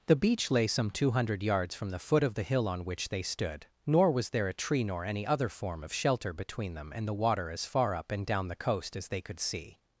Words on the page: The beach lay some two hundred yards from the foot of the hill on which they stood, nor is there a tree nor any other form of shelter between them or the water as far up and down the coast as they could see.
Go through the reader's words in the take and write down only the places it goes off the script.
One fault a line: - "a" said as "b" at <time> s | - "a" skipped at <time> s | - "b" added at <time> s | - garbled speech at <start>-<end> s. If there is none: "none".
- "is" said as "was" at 4.1 s
- "or" said as "and" at 6.9 s